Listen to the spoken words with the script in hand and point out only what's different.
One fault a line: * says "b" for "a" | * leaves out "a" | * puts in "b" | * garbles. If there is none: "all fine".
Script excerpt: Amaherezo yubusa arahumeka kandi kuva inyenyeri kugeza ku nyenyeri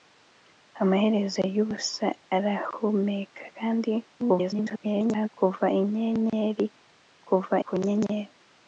* garbles
* says "kuva" for "kugeza"